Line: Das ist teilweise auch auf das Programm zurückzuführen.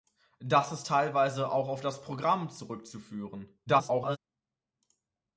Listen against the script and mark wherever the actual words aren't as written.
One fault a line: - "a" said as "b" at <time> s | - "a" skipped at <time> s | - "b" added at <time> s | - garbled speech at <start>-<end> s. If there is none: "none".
- garbled speech at 3.7-4.2 s